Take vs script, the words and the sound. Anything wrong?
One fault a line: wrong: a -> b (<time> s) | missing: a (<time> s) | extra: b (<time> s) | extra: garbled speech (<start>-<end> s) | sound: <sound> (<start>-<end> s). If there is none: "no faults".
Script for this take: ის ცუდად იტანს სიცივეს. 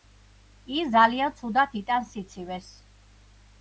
extra: ძალიან (0.9 s)